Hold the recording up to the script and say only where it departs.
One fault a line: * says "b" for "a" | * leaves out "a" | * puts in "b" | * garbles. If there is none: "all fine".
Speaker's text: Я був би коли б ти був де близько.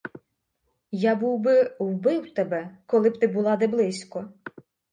* puts in "вбив тебе"
* says "була" for "був"